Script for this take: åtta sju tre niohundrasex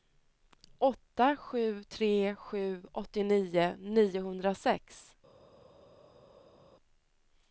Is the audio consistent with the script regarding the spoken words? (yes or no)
no